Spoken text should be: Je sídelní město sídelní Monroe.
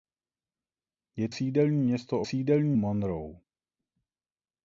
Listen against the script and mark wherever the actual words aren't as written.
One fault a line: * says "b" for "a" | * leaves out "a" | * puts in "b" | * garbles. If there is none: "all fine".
all fine